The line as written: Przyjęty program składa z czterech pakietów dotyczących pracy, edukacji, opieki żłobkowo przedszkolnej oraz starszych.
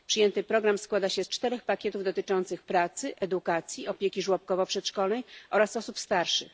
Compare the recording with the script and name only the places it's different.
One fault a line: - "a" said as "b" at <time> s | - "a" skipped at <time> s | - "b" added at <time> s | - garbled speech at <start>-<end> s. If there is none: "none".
- "się" added at 1.1 s
- "osób" added at 5.8 s